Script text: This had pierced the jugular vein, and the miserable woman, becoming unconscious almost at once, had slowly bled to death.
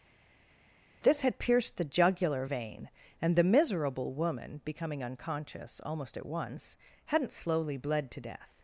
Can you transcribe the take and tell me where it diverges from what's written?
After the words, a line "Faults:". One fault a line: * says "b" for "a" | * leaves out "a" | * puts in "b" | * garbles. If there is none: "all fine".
This had pierced the jugular vein, and the miserable woman, becoming unconscious almost at once, hadn't slowly bled to death.
Faults:
* says "hadn't" for "had"